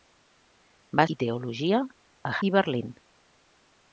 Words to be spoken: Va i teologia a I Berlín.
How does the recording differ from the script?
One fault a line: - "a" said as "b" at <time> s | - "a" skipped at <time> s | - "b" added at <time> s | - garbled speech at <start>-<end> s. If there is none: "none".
none